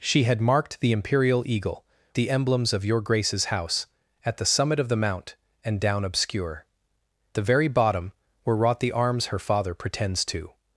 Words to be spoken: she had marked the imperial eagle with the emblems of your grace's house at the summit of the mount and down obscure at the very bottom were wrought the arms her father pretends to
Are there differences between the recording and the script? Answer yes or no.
yes